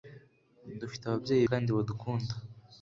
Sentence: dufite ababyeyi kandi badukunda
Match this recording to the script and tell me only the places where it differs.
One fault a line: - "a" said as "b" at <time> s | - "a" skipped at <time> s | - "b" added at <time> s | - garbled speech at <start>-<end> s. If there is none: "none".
none